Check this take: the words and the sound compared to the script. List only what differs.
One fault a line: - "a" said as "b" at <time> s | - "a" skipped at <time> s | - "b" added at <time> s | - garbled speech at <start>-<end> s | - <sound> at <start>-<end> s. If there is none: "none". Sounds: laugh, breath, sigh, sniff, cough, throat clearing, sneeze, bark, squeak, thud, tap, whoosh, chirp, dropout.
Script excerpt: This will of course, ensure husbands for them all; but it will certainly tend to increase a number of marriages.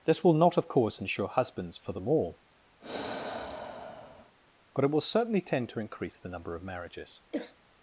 - "not" added at 0.3 s
- sigh at 2.8-4.4 s
- "a" said as "the" at 6.2 s
- throat clearing at 7.3-7.6 s